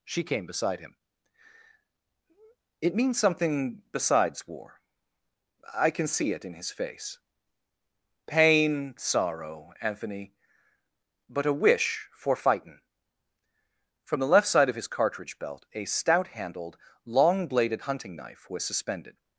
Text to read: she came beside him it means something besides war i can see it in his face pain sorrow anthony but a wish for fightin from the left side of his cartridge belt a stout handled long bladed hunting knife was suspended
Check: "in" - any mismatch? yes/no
no